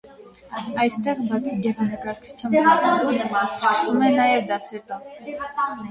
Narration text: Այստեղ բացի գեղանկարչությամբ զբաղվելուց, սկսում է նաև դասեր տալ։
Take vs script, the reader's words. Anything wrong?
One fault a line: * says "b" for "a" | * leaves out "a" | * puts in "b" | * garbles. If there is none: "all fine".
all fine